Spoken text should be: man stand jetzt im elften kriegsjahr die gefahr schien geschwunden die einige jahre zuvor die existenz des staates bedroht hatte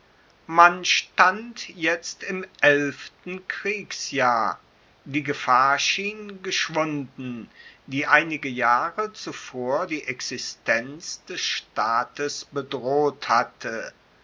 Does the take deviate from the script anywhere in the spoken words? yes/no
no